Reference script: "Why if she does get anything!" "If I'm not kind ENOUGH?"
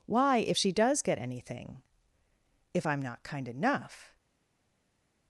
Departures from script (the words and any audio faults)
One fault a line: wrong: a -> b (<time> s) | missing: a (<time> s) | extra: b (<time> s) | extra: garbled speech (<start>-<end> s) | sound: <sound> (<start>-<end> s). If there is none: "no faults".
no faults